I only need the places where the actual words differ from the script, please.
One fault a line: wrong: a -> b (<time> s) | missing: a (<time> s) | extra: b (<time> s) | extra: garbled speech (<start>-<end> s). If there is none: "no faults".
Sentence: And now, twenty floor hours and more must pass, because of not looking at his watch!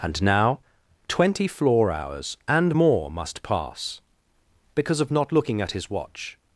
no faults